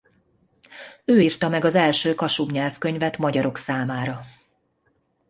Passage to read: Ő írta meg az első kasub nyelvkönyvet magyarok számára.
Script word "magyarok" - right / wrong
right